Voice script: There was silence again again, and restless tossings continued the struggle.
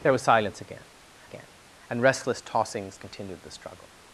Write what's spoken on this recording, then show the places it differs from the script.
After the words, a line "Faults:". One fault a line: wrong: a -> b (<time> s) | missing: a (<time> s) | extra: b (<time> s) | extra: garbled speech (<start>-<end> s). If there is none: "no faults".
There was silence again again, and restless tossings continued the struggle.
Faults:
no faults